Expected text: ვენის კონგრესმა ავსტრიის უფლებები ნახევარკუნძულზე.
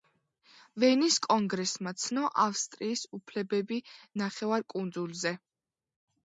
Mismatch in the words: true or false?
true